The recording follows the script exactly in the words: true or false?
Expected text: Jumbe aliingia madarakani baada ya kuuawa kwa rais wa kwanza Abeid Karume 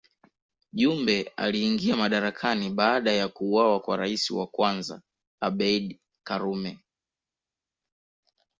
true